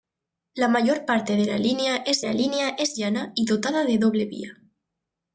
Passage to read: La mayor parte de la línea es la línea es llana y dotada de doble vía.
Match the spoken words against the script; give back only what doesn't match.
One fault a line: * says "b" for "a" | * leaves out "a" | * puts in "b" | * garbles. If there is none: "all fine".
all fine